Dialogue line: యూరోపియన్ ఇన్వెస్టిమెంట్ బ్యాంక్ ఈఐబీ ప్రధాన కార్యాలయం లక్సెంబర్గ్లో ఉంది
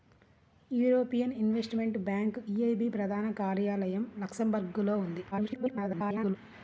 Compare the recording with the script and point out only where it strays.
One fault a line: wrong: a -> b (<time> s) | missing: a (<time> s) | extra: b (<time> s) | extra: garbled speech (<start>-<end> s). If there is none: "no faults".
extra: garbled speech (5.3-6.4 s)